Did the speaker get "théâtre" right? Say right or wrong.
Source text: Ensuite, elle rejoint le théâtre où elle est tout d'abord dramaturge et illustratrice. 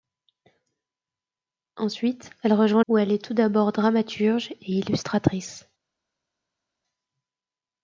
wrong